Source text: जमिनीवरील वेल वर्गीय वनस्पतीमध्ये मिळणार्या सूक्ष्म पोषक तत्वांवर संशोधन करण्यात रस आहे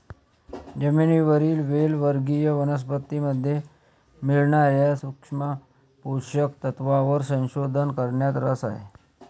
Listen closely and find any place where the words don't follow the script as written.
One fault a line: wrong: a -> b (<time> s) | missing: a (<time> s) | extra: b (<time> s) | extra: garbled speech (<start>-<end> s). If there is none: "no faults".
no faults